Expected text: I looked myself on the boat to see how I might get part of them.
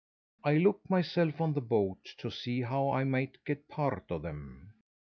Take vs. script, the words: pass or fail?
pass